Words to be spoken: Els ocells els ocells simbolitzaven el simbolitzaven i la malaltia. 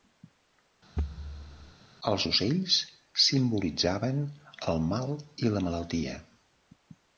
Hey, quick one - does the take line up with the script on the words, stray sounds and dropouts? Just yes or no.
no